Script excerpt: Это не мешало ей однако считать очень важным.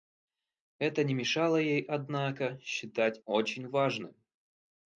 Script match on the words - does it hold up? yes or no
yes